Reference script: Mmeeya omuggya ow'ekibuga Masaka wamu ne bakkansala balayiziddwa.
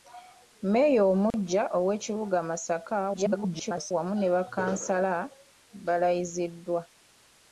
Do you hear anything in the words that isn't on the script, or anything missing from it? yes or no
yes